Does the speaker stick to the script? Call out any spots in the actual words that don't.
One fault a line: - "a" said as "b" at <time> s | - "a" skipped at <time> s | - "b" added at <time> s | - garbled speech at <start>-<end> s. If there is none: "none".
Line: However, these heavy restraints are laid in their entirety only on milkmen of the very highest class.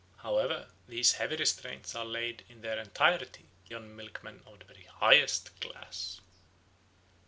- "only" skipped at 3.5 s